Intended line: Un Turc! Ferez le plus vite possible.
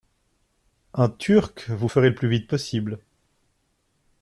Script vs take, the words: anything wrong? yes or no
yes